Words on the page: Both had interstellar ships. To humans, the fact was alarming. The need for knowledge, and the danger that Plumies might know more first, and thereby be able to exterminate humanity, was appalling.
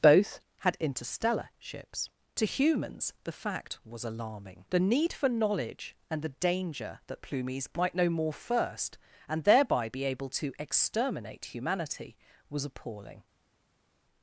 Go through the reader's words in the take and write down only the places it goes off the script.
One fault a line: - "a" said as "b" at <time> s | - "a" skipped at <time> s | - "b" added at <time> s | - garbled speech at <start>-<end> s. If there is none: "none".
none